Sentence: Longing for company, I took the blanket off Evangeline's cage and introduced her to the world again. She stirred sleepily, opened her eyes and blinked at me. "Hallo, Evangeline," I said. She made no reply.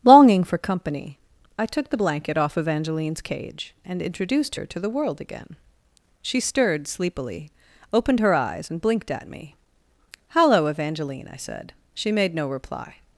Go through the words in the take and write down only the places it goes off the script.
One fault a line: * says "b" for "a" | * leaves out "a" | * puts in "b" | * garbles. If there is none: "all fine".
all fine